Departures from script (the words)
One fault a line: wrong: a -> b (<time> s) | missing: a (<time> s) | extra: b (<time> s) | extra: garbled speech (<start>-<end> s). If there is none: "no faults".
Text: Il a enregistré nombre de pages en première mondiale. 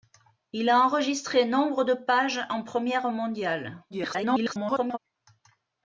extra: garbled speech (3.9-5.0 s)